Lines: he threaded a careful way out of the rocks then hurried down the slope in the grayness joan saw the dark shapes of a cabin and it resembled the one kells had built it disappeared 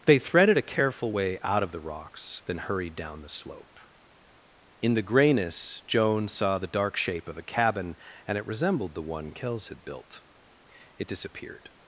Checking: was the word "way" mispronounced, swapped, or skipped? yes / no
no